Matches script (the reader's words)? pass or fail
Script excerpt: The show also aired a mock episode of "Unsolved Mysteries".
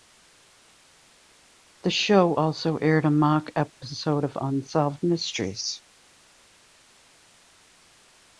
pass